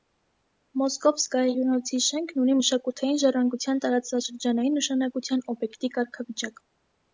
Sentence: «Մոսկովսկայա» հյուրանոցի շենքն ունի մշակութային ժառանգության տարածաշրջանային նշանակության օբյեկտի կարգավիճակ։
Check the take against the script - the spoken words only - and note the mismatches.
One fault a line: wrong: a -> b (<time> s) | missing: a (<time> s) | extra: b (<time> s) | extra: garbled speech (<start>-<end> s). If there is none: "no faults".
no faults